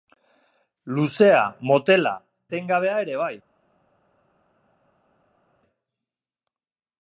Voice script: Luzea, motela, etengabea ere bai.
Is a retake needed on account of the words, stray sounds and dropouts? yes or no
no